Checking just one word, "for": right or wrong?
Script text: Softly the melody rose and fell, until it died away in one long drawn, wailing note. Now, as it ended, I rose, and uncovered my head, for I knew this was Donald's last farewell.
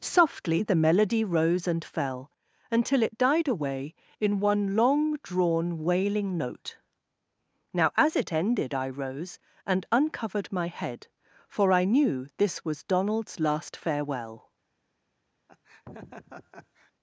right